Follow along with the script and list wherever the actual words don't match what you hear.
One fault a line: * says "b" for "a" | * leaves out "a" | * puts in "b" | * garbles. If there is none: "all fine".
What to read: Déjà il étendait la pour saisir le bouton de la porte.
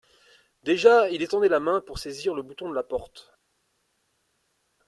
* puts in "main"